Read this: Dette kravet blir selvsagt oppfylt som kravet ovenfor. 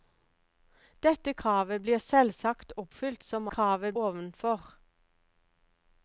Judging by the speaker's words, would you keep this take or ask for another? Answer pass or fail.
pass